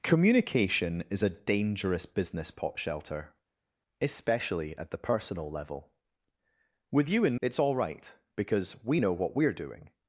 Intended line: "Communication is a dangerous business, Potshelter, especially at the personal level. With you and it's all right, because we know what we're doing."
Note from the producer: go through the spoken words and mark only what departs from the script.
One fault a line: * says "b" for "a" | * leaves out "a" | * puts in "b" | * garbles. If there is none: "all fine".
all fine